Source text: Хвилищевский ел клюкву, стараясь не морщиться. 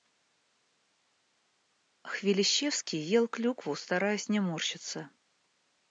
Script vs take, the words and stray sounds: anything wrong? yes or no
no